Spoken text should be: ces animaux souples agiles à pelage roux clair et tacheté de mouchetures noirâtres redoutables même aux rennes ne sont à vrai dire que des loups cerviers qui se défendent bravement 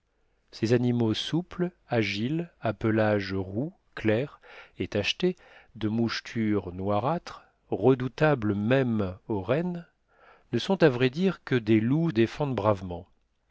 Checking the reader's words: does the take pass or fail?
fail